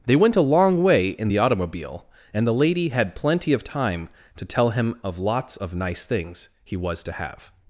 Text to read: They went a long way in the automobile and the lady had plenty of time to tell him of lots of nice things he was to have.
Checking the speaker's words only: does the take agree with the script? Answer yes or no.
yes